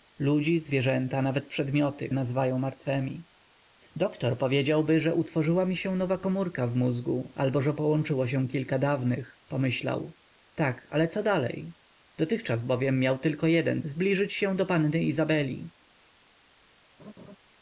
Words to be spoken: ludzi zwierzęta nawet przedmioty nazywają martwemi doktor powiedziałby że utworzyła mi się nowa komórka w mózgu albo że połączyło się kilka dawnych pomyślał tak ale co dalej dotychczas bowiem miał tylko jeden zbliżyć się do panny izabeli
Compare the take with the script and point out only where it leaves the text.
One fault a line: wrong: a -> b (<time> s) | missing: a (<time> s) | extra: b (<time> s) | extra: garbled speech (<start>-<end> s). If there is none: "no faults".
no faults